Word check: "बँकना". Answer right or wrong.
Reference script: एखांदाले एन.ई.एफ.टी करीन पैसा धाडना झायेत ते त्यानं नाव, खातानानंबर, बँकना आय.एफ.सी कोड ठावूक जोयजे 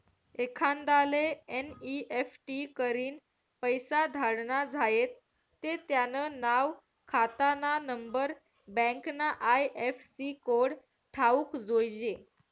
right